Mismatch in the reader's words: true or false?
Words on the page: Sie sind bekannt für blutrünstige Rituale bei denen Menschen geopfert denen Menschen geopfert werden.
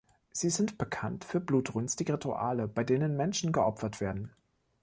true